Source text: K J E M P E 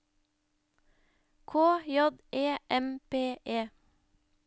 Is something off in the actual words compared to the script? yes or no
no